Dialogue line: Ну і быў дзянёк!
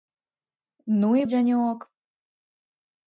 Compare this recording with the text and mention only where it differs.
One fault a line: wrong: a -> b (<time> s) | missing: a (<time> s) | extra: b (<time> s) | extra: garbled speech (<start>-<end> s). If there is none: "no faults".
missing: быў (1.2 s)